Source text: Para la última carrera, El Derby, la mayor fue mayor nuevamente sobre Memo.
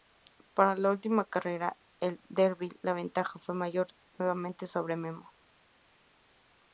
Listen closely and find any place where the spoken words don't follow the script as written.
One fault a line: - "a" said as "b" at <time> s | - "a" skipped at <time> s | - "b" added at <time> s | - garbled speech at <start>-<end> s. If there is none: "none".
- "mayor" said as "ventaja" at 2.9 s